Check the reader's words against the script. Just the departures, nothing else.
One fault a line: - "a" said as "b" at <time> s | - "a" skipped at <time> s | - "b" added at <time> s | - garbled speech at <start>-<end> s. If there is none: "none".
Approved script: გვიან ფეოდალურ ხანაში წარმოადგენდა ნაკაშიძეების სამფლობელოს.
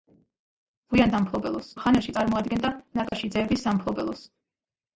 - "ფეოდალურ" said as "სამფლობელოს" at 1.2 s